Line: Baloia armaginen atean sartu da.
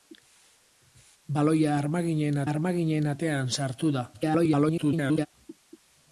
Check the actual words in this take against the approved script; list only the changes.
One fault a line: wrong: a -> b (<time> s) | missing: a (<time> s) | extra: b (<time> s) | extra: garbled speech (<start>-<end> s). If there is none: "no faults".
extra: armaginen (2.5 s)
extra: garbled speech (4.1-5.3 s)